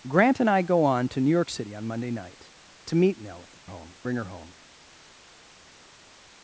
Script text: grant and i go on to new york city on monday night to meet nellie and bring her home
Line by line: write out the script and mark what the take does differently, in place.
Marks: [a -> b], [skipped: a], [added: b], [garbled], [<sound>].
grant and i go on to new york city on monday night to meet nellie [and -> home] bring her home